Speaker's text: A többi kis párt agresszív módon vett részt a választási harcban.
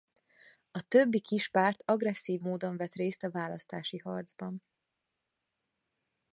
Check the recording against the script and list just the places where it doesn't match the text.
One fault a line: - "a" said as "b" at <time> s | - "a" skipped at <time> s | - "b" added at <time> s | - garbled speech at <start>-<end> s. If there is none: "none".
none